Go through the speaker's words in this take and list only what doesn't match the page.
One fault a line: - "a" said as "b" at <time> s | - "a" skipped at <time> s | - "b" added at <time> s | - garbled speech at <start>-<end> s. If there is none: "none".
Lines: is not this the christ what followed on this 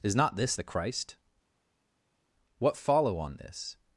- "followed" said as "follow" at 2.8 s